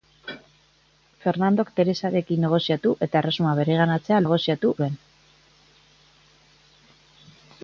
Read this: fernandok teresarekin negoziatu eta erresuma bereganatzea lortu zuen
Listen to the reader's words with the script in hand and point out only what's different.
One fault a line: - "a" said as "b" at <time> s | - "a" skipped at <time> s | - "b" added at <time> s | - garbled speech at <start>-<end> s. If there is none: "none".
- "lortu" said as "negoziatu" at 4.2 s